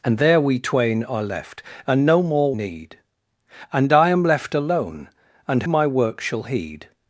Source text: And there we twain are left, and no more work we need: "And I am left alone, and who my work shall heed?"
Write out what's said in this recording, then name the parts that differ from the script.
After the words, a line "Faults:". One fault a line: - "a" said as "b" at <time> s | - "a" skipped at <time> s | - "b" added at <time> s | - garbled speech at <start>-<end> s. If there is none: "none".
And there we twain are left, and no more need: "And I am left alone, and my work shall heed?"
Faults:
- "work we" skipped at 2.5 s
- "who" skipped at 5.6 s